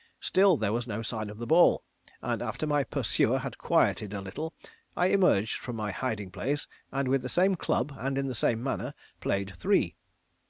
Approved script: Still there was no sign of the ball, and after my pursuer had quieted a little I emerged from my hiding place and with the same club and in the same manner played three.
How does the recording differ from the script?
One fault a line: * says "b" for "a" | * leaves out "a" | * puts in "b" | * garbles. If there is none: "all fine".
all fine